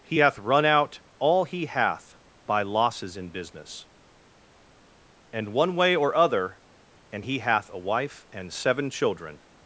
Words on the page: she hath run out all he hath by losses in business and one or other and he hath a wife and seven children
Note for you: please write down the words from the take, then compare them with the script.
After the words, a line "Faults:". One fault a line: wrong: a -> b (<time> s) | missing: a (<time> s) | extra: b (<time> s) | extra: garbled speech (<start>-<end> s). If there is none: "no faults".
he hath run out all he hath by losses in business and one way or other and he hath a wife and seven children
Faults:
wrong: she -> he (0.0 s)
extra: way (5.8 s)